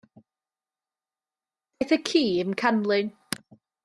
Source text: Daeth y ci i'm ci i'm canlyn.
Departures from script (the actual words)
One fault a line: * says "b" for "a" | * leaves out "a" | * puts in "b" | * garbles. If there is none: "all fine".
* leaves out "ci i'm"